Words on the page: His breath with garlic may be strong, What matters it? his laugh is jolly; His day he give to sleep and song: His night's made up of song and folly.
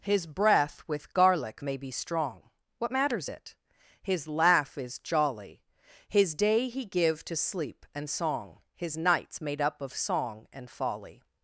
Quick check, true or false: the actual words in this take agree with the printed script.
true